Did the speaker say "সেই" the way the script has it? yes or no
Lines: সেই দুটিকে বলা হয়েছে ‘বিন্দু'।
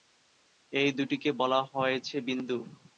no